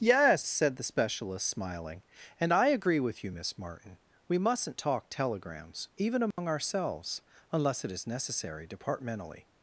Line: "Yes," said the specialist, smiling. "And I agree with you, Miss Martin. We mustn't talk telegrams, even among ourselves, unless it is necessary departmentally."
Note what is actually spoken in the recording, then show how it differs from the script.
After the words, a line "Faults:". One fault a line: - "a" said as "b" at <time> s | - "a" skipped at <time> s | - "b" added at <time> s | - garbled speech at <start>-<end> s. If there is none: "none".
"Yes," said the specialist, smiling. "And I agree with you, Miss Martin. We mustn't talk telegrams, even among ourselves, unless it is necessary departmentally."
Faults:
none